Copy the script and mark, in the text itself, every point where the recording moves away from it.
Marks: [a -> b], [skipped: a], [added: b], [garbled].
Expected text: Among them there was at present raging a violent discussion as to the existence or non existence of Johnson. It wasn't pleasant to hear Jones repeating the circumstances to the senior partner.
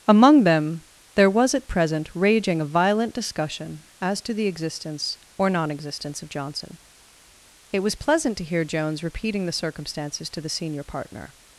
Among them there was at present raging a violent discussion as to the existence or non existence of Johnson. It [wasn't -> was] pleasant to hear Jones repeating the circumstances to the senior partner.